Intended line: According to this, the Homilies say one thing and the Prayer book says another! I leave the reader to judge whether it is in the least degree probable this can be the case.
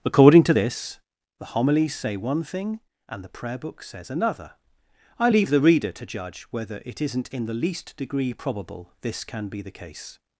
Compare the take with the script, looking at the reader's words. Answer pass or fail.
fail